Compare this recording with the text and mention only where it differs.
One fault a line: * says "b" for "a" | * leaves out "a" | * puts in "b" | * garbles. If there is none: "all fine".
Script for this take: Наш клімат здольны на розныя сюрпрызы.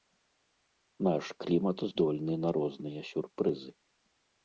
all fine